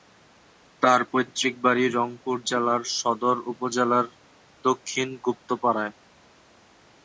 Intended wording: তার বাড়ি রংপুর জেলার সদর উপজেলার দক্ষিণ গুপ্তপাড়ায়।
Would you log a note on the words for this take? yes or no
yes